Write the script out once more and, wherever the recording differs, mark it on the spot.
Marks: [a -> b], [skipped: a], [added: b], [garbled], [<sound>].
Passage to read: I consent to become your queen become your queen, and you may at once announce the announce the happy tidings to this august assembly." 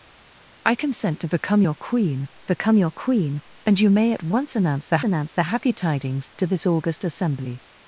I consent to become your queen become your queen, and you may at once announce the announce the happy tidings to this august assembly."